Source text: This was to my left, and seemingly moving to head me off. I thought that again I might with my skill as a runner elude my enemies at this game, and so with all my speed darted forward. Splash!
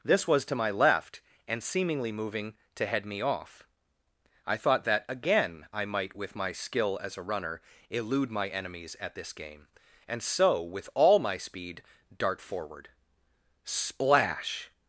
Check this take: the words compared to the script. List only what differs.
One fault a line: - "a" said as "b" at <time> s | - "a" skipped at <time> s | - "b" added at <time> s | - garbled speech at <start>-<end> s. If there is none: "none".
- "darted" said as "dart" at 12.2 s